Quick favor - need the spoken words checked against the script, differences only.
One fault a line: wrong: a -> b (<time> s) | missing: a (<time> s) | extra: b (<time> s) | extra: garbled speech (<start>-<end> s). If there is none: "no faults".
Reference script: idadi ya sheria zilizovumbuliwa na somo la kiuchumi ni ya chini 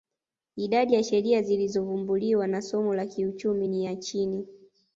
no faults